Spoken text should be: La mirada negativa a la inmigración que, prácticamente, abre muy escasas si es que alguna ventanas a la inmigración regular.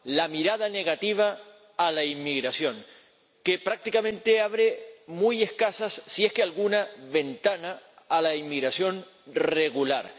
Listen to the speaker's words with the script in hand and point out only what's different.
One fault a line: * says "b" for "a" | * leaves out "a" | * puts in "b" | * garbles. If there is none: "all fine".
all fine